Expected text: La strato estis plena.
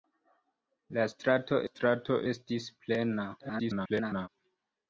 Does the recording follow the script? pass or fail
fail